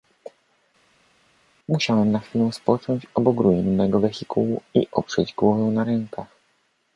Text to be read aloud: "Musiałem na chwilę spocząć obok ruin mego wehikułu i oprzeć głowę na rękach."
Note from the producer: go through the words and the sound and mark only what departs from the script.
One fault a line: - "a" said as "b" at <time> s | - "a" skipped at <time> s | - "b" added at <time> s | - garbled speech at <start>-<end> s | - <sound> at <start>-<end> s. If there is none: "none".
none